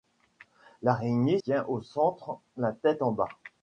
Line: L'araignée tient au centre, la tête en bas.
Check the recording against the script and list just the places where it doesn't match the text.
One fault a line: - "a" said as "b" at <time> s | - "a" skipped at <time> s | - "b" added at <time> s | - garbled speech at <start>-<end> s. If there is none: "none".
none